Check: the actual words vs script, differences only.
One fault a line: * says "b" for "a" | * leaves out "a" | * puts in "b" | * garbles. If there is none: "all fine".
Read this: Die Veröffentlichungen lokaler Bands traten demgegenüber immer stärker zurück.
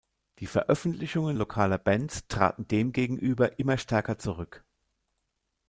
all fine